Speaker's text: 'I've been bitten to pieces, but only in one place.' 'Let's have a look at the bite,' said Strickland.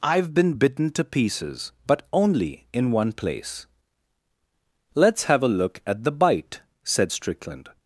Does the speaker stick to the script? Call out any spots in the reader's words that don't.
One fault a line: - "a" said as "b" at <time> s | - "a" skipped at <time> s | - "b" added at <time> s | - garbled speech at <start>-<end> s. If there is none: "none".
none